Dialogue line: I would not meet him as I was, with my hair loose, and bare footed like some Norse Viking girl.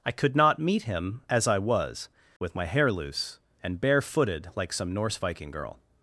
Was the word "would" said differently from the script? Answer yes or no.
yes